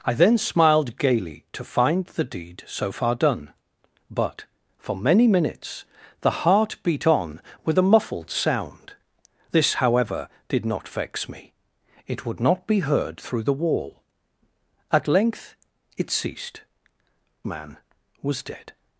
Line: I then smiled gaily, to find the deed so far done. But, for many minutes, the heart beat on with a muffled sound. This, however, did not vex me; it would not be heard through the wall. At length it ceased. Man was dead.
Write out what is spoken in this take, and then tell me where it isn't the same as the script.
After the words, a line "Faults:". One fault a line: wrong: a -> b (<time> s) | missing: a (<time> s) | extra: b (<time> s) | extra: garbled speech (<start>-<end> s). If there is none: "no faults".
I then smiled gaily, to find the deed so far done. But, for many minutes, the heart beat on with a muffled sound. This, however, did not vex me; it would not be heard through the wall. At length it ceased. Man was dead.
Faults:
no faults